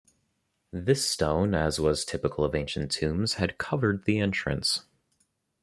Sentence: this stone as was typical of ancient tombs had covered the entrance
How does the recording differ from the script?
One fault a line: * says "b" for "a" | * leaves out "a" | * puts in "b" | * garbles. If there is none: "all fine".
all fine